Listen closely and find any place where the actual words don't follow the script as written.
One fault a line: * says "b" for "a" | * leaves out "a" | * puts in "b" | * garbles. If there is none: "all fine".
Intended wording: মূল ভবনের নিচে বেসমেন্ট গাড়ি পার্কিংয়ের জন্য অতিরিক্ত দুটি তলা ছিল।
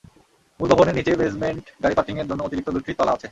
* says "আছে" for "ছিল"